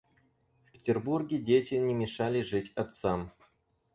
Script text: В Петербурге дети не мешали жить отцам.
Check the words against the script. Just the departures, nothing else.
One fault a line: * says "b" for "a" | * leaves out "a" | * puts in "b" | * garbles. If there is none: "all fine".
all fine